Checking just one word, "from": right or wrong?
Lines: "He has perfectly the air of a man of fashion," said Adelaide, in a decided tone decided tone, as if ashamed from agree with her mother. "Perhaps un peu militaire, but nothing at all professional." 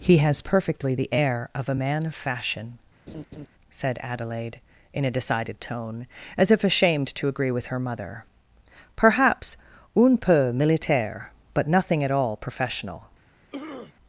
wrong